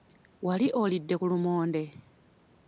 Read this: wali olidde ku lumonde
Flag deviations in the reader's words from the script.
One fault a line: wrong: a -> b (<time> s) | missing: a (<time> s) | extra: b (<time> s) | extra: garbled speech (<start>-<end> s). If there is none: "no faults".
no faults